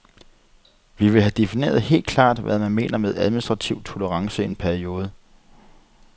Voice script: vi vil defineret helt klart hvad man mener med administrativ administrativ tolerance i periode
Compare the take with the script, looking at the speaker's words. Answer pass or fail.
fail